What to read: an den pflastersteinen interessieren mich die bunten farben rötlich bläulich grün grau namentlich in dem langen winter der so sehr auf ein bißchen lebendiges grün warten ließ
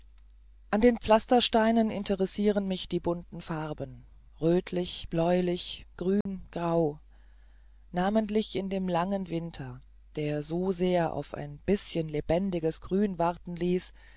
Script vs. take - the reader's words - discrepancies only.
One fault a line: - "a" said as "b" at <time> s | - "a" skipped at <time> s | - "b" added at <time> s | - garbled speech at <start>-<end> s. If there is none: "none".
none